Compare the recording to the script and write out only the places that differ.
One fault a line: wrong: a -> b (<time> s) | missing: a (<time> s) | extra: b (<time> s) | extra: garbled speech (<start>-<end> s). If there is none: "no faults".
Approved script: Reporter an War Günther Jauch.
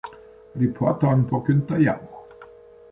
no faults